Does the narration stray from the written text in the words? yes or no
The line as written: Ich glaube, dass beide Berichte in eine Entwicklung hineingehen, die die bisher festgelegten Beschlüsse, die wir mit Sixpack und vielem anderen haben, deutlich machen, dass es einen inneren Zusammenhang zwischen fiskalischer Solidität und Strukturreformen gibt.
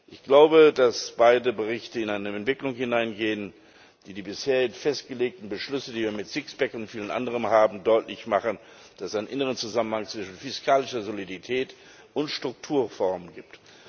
no